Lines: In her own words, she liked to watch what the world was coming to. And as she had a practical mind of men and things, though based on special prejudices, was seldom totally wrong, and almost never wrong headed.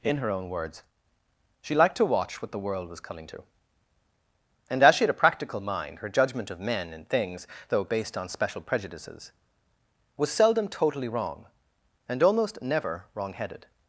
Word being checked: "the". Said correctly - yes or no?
yes